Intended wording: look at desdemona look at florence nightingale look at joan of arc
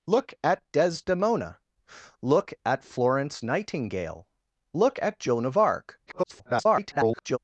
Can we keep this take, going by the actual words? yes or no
no